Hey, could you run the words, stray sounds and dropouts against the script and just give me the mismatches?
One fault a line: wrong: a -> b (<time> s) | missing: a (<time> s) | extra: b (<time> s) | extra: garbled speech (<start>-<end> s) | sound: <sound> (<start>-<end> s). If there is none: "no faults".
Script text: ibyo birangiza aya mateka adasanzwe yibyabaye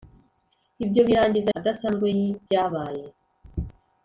missing: aya mateka (1.5 s)